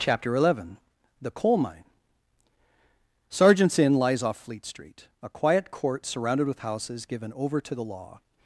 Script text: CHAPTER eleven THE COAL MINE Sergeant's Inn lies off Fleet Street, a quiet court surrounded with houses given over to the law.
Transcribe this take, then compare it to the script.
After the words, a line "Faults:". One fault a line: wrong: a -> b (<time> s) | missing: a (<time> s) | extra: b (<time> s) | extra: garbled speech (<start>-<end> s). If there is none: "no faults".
CHAPTER eleven THE COAL MINE Sergeant's Inn lies off Fleet Street, a quiet court surrounded with houses given over to the law.
Faults:
no faults